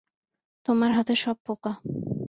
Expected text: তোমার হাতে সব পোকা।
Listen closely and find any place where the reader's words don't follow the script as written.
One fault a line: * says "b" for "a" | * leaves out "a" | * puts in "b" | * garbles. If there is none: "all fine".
all fine